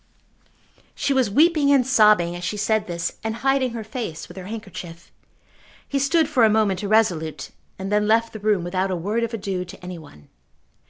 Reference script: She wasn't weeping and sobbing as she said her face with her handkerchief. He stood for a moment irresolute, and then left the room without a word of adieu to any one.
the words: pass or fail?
fail